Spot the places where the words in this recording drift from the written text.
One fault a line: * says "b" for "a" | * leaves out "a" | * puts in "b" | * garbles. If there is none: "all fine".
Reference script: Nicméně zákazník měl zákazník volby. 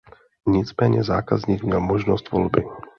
* says "možnost" for "zákazník"